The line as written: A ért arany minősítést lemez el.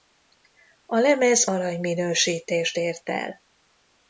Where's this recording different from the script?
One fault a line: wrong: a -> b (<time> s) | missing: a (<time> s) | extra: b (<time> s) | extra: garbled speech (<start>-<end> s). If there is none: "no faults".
wrong: ért -> lemez (1.0 s)
wrong: lemez -> ért (2.8 s)